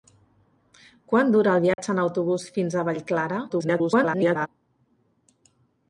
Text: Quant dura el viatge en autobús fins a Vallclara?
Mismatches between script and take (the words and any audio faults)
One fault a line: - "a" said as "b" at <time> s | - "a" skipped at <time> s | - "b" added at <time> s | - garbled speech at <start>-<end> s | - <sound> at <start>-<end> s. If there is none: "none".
- dropout at 1.7-1.8 s
- garbled speech at 3.5-4.5 s